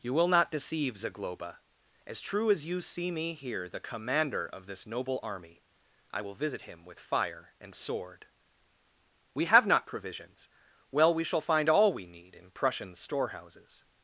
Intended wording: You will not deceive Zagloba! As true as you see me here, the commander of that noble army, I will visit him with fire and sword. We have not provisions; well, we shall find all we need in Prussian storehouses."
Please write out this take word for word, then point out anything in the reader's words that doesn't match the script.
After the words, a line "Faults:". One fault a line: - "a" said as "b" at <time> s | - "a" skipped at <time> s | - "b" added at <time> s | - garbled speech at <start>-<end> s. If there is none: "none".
You will not deceive Zagloba! As true as you see me here, the commander of this noble army, I will visit him with fire and sword. We have not provisions; well, we shall find all we need in Prussian storehouses."
Faults:
- "that" said as "this" at 4.7 s